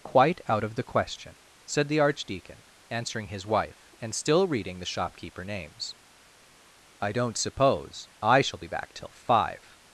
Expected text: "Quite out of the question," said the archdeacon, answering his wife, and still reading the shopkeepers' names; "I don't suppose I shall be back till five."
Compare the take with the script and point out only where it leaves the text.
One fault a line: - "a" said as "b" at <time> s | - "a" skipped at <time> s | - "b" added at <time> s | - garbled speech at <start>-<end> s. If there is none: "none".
- "shopkeepers" said as "shopkeeper" at 4.8 s